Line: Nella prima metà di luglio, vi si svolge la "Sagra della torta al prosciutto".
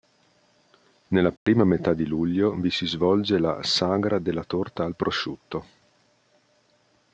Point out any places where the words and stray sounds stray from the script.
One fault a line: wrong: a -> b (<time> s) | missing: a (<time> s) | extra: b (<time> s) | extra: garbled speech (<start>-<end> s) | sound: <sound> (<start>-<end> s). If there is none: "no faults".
sound: dropout (1.4-1.5 s)